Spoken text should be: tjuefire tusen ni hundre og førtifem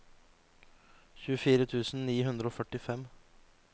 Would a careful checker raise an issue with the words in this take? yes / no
no